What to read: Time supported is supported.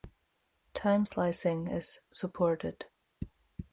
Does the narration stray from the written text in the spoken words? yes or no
yes